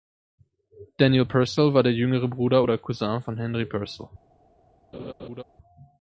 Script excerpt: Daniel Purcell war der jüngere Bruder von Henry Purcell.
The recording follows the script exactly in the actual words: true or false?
false